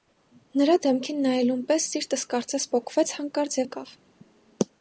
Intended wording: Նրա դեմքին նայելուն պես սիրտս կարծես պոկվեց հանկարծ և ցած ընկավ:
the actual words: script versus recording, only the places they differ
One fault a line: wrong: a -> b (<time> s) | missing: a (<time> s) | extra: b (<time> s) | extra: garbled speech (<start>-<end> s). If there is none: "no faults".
missing: և ցած (3.6 s)